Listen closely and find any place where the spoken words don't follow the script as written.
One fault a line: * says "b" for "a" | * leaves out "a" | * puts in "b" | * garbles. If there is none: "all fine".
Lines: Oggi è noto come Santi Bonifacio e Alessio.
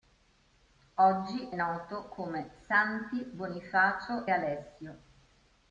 * leaves out "è"
* leaves out "e"